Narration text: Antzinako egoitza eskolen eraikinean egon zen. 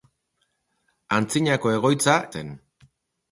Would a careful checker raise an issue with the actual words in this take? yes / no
yes